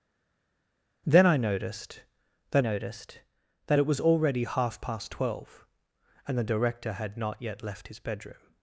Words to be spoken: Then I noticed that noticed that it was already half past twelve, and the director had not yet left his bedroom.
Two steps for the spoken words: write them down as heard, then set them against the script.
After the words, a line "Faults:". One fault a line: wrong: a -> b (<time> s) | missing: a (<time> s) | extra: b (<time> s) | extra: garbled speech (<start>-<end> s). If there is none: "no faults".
Then I noticed that noticed that it was already half past twelve, and the director had not yet left his bedroom.
Faults:
no faults